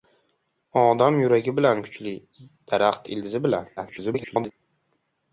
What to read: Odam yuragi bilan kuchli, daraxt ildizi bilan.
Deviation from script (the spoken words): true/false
true